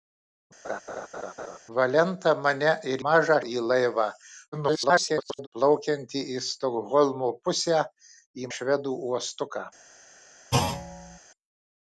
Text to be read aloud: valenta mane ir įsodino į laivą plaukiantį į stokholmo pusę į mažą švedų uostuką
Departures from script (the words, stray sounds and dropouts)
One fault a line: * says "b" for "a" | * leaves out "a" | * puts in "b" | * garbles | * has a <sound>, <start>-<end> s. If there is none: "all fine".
* has a laugh, 0.6-1.6 s
* says "mažą" for "įsodino"
* garbles
* leaves out "mažą"
* has a thud, 10.5-11.2 s